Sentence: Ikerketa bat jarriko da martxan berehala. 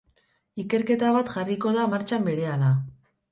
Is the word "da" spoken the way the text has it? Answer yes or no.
yes